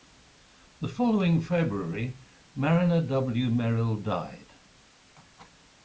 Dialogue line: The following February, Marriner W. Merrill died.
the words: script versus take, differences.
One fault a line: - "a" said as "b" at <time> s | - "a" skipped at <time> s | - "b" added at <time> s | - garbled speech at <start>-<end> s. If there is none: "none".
none